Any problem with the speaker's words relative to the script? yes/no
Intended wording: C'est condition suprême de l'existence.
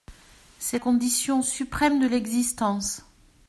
no